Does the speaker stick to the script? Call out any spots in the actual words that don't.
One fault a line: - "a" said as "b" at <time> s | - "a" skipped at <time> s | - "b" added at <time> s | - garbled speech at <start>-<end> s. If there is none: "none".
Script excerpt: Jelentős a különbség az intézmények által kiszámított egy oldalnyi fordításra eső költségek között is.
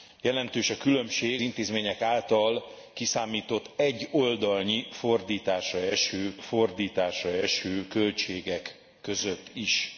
- "az" skipped at 1.4 s
- "fordításra eső" added at 6.4 s